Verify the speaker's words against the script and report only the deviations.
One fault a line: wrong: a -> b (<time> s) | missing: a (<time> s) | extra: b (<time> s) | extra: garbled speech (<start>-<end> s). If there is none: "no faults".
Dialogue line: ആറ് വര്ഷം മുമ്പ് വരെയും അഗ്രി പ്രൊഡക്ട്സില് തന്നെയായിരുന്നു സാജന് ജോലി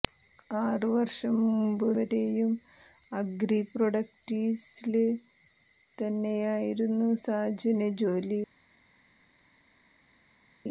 no faults